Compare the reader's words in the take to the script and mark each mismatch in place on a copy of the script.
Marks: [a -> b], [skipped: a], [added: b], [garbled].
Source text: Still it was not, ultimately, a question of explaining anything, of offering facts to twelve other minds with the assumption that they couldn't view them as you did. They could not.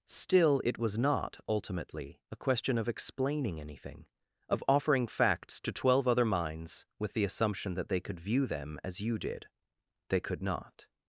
Still it was not, ultimately, a question of explaining anything, of offering facts to twelve other minds with the assumption that they [couldn't -> could] view them as you did. They could not.